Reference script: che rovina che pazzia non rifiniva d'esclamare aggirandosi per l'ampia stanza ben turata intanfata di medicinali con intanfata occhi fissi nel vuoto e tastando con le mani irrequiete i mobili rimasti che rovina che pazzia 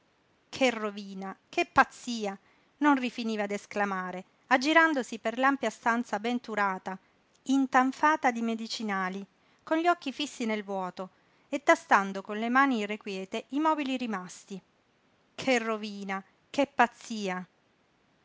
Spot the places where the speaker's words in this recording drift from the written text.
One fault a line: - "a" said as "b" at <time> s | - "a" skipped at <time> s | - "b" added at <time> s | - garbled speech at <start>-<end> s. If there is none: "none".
- "intanfata" said as "gli" at 9.8 s